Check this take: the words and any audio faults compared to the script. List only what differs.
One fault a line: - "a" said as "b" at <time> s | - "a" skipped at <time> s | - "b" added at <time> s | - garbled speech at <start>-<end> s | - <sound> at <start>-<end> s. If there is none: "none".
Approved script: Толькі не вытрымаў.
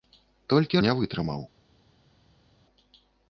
none